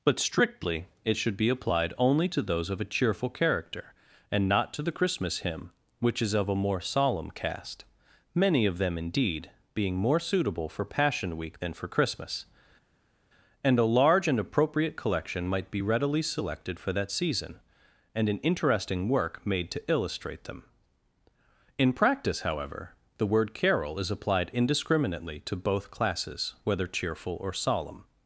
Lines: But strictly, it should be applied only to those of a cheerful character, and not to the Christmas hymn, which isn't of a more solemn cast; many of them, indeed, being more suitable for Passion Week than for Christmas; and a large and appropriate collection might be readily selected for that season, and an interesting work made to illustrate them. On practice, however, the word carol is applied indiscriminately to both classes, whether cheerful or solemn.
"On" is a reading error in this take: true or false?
true